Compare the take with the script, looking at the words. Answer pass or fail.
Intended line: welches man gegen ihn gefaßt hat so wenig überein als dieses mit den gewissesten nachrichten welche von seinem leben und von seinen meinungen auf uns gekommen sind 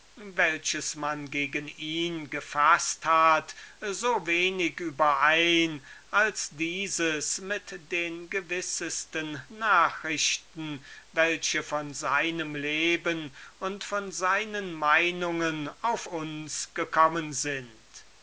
pass